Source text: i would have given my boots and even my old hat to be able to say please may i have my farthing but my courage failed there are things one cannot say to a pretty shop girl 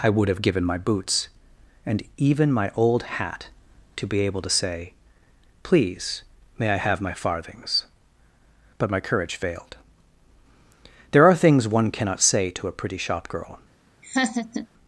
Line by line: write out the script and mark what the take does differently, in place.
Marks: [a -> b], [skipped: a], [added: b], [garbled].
i would have given my boots and even my old hat to be able to say please may i have my [farthing -> farthings] but my courage failed there are things one cannot say to a pretty shop girl